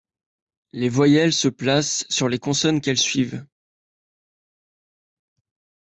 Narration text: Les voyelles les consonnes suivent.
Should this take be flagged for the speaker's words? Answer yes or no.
yes